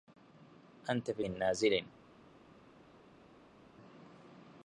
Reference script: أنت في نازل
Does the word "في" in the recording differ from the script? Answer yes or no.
no